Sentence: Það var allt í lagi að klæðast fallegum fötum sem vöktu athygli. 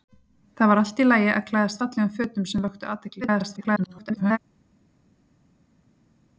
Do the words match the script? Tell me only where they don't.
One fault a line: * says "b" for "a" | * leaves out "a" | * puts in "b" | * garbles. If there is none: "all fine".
* garbles